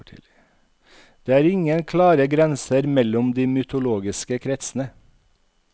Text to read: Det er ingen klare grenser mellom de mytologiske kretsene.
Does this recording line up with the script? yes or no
yes